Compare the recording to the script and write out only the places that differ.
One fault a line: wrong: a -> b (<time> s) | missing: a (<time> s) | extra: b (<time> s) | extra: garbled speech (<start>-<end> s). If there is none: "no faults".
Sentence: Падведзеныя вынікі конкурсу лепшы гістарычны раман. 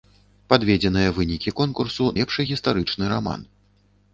no faults